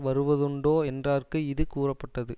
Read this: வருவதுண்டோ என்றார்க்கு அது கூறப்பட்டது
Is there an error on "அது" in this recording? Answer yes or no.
yes